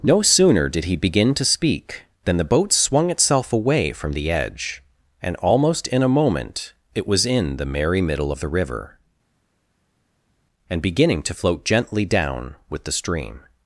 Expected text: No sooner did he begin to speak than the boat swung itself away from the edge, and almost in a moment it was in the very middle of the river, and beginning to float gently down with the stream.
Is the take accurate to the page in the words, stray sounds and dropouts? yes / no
no